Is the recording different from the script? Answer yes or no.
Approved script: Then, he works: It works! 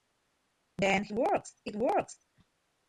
no